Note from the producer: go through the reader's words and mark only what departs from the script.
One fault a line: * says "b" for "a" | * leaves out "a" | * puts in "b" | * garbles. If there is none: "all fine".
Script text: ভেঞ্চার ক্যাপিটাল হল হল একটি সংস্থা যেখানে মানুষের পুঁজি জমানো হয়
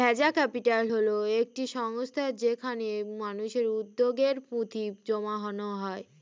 * leaves out "হল"
* puts in "উদ্যোগে"